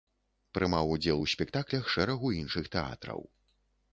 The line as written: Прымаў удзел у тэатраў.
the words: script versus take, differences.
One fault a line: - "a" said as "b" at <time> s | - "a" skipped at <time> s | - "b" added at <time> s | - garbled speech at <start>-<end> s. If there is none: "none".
- "спектаклях шэрагу іншых" added at 1.3 s